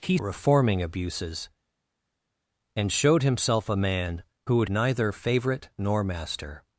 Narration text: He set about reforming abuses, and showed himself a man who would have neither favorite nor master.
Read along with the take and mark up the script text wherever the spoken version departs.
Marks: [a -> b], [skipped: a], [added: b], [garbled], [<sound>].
He [skipped: set about] reforming abuses, and showed himself a man who would [skipped: have] neither favorite nor master.